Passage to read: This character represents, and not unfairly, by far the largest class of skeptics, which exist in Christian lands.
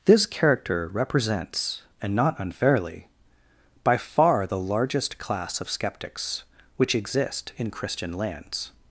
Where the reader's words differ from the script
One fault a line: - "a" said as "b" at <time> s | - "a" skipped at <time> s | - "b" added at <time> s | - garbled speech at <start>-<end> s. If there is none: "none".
none